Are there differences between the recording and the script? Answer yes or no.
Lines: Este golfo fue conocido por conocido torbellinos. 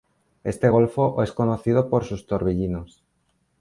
yes